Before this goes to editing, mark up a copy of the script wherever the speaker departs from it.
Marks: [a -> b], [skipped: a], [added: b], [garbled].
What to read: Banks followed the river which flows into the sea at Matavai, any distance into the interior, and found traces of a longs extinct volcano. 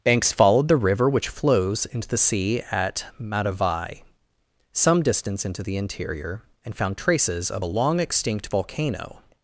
Banks followed the river which flows into the sea at Matavai, [any -> some] distance into the interior, and found traces of a [longs -> long] extinct volcano.